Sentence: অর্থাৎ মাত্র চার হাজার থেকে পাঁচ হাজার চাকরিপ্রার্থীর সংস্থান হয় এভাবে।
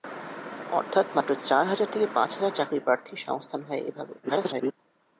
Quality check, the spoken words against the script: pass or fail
fail